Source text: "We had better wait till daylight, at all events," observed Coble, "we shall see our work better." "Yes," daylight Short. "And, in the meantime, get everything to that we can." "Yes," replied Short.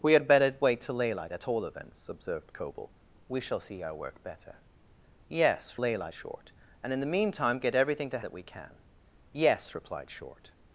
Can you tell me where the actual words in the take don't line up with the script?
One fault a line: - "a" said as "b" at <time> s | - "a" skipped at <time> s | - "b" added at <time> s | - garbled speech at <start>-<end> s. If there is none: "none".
none